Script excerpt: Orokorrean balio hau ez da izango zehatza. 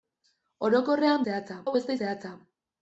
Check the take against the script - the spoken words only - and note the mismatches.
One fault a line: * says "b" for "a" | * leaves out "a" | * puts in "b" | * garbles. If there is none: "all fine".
* says "zehatza" for "balio"
* leaves out "izango"